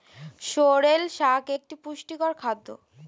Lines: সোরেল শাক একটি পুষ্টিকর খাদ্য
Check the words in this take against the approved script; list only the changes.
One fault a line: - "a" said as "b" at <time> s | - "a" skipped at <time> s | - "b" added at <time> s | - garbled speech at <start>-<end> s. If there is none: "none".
none